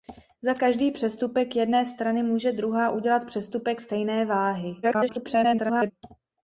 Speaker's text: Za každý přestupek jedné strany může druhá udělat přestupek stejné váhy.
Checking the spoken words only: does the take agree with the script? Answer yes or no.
no